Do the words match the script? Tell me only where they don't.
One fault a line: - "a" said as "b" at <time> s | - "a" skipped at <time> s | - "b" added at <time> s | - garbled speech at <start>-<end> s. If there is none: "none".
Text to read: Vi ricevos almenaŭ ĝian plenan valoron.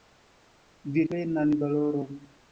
- "ricevos almenaŭ ĝian" skipped at 1.0 s